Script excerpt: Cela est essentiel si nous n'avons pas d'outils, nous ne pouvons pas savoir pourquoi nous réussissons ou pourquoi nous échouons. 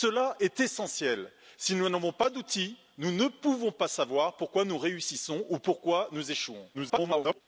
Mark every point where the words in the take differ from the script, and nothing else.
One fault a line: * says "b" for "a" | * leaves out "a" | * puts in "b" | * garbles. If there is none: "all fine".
* garbles